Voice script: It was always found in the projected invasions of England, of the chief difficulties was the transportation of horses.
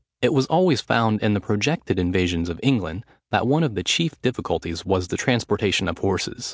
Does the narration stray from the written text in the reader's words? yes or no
yes